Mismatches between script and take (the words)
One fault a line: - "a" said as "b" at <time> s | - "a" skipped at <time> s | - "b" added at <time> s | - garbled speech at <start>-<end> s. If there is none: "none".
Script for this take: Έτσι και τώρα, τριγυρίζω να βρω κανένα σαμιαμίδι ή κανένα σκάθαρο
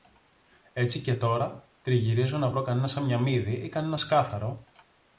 none